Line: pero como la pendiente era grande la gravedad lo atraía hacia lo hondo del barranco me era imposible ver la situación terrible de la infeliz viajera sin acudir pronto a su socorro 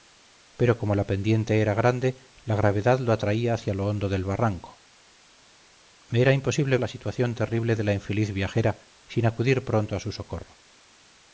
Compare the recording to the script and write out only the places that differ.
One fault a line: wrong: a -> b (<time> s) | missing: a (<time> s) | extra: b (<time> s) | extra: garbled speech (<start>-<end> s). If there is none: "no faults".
missing: ver (6.8 s)